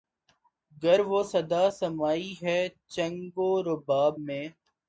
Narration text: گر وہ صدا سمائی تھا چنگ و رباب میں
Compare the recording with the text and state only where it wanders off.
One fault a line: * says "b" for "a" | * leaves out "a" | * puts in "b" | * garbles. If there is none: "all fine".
* says "ہے" for "تھا"